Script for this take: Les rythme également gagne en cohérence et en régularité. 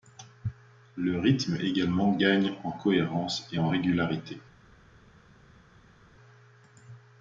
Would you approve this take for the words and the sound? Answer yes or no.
no